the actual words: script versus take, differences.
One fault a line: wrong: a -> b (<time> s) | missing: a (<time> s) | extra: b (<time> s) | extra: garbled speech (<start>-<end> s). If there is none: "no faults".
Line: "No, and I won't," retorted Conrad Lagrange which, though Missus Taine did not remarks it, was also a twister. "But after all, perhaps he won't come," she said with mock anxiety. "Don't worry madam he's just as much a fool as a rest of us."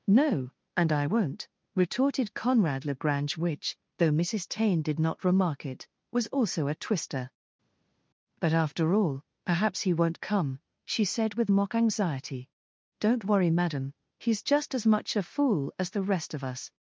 wrong: remarks -> remark (5.2 s)
wrong: a -> the (15.9 s)